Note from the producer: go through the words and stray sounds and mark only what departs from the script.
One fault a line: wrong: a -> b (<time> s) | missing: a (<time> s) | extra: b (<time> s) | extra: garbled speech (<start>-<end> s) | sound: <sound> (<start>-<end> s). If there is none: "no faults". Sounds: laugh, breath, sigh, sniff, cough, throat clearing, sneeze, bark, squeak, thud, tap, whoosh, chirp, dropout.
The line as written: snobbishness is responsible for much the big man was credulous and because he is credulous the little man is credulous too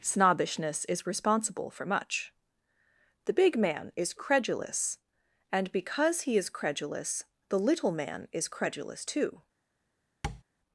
wrong: was -> is (4.0 s)
sound: tap (10.2-10.4 s)